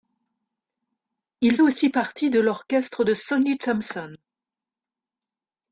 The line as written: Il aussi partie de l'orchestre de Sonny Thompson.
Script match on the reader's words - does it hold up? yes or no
yes